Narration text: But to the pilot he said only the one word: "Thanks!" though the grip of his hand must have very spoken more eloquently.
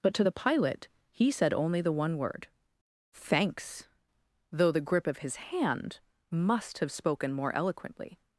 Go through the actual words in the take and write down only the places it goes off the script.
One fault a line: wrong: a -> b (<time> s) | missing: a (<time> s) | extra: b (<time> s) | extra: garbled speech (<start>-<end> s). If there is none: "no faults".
missing: very (6.9 s)